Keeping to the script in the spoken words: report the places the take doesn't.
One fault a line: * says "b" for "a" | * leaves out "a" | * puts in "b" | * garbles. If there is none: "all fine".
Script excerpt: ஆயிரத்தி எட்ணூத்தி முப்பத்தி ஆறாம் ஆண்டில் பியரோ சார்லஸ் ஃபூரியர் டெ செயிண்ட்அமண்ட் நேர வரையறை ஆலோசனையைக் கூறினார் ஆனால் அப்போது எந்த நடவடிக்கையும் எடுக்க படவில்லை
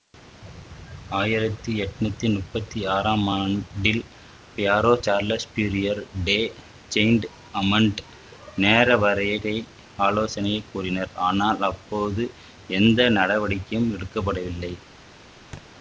all fine